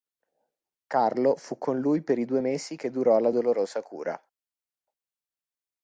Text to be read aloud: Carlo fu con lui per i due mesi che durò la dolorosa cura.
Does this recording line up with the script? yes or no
yes